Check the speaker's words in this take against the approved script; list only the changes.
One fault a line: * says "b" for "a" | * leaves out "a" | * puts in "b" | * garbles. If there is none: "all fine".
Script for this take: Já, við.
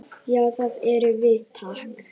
* puts in "það erum"